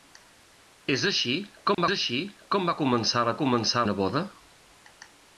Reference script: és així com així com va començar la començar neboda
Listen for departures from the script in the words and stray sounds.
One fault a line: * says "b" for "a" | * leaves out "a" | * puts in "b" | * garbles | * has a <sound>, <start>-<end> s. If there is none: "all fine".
* has a dropout, 1.7-1.8 s